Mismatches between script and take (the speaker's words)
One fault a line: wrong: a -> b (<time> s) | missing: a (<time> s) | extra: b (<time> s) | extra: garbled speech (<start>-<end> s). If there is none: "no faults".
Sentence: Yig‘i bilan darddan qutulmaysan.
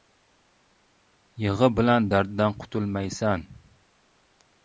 no faults